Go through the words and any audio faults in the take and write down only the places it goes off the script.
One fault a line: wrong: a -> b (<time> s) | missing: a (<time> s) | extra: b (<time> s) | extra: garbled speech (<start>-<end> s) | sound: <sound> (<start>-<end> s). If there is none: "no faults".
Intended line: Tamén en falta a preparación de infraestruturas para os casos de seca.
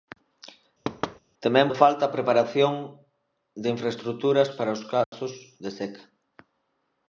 sound: thud (0.8-1.2 s)
sound: dropout (5.0-5.1 s)